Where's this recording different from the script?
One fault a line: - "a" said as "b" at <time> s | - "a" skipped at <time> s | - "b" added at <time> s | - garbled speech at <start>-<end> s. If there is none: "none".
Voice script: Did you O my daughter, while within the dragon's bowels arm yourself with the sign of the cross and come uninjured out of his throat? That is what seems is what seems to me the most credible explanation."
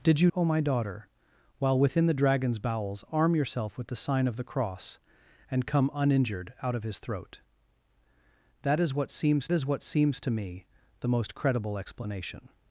none